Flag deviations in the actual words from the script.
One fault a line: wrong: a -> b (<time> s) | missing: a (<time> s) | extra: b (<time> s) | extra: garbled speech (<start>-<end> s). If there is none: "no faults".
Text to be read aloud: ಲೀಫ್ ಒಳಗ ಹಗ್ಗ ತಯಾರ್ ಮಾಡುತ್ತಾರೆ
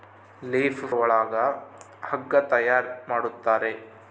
no faults